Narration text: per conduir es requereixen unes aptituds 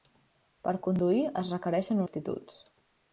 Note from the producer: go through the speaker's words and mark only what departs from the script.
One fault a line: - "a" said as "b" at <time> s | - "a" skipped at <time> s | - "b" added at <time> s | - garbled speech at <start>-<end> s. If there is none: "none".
- "unes" skipped at 2.0 s